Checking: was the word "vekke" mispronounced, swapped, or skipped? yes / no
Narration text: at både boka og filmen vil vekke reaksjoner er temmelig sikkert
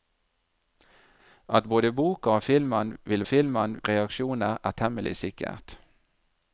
yes